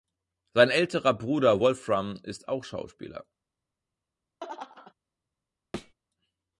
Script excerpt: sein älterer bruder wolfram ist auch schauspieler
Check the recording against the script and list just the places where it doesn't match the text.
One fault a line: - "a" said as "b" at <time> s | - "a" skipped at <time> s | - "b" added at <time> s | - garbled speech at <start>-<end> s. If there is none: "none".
none